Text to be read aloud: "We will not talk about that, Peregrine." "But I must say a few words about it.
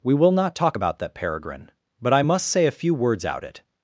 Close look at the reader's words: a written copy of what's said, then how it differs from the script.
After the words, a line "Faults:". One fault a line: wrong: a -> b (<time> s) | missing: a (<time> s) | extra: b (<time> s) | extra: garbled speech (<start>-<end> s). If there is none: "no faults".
"We will not talk about that, Peregrine." "But I must say a few words out it.
Faults:
wrong: about -> out (3.2 s)